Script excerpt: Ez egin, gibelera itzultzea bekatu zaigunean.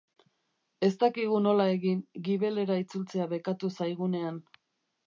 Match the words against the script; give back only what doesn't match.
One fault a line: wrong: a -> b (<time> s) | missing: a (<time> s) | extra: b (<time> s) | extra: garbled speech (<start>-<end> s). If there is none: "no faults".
extra: dakigu nola (1.0 s)